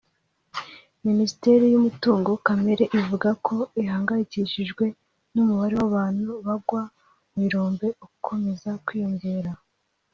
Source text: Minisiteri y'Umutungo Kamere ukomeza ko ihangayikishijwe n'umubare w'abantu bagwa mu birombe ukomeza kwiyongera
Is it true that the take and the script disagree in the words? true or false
true